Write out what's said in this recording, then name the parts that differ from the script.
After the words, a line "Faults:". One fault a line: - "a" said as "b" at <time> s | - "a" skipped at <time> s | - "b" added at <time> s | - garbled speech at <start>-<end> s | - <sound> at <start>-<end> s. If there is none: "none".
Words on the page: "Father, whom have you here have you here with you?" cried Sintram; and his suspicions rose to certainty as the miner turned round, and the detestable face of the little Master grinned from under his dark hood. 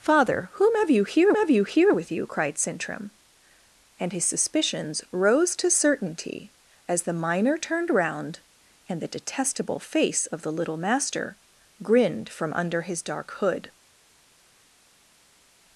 "Father, whom have you here have you here with you?" cried Sintram; and his suspicions rose to certainty as the miner turned round, and the detestable face of the little Master grinned from under his dark hood.
Faults:
none